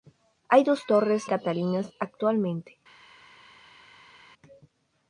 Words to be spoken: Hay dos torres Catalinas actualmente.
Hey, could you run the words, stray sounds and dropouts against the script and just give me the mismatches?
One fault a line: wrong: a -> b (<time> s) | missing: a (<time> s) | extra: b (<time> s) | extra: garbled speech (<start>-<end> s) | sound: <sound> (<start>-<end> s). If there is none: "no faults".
no faults